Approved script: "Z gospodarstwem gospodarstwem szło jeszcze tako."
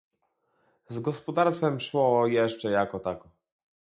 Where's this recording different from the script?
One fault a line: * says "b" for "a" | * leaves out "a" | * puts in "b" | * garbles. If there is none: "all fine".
* leaves out "gospodarstwem"
* puts in "jako"